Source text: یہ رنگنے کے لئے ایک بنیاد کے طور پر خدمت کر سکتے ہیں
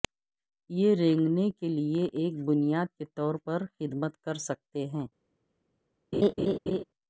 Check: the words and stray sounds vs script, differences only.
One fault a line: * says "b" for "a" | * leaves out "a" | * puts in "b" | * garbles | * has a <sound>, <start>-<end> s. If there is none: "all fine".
* has a laugh, 6.1-6.8 s